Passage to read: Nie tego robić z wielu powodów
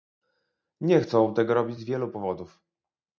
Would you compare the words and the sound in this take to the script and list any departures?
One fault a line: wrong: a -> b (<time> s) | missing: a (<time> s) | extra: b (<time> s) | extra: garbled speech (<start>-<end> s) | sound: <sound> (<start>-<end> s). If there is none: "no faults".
extra: chcą (1.0 s)